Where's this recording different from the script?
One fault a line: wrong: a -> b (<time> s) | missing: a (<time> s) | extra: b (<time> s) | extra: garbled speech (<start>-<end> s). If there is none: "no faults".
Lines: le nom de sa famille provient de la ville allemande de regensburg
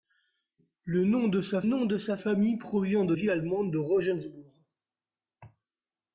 extra: nom de sa (1.6 s)
missing: la (3.1 s)